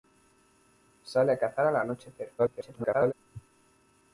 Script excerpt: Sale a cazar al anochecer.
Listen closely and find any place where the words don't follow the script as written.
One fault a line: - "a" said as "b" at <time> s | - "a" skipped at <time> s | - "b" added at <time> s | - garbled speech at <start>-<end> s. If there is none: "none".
- garbled speech at 2.4-3.1 s